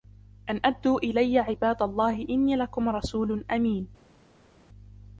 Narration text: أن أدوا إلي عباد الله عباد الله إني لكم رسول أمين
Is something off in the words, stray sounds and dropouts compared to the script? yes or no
yes